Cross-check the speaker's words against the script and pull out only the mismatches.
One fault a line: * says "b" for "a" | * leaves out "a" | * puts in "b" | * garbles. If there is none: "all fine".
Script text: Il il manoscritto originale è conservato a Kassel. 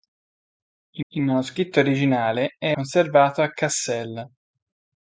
all fine